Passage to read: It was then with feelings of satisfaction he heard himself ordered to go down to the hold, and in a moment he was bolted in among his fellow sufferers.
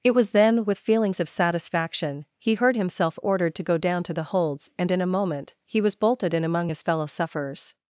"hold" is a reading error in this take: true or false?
true